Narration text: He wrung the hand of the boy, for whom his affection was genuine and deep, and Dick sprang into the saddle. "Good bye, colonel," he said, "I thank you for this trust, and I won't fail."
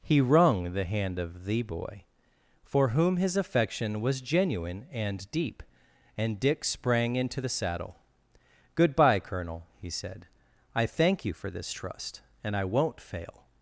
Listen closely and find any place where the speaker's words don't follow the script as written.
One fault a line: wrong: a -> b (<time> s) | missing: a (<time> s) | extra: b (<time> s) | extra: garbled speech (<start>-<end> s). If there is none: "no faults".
no faults